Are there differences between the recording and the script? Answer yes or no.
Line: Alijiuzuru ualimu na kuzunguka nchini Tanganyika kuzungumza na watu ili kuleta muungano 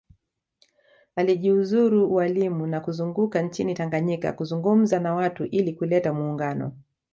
no